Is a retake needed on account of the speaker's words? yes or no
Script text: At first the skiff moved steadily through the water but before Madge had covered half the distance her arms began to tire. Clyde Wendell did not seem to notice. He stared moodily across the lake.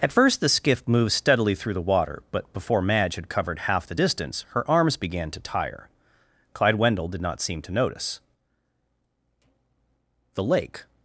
yes